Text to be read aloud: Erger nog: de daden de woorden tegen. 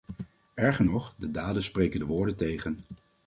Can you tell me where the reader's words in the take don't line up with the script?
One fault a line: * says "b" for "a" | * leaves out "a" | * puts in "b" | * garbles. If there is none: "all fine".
* puts in "spreken"